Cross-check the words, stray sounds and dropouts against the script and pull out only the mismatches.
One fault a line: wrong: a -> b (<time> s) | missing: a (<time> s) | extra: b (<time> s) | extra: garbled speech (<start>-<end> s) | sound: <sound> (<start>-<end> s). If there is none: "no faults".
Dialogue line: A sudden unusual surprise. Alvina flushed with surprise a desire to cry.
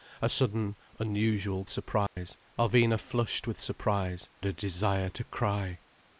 sound: dropout (2.1-2.2 s)